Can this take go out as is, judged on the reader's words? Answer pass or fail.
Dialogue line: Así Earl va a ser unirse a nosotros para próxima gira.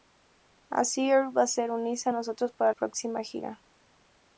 pass